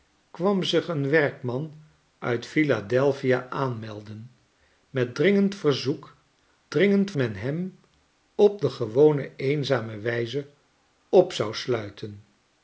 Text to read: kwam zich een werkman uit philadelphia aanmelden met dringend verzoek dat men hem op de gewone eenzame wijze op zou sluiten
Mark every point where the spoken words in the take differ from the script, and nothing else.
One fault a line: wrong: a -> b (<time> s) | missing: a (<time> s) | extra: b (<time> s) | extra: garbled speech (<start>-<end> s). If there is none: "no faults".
wrong: dat -> dringend (6.7 s)